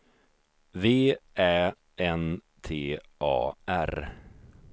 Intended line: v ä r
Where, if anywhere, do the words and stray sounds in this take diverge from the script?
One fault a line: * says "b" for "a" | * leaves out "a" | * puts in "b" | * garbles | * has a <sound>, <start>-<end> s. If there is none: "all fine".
* puts in "n t a"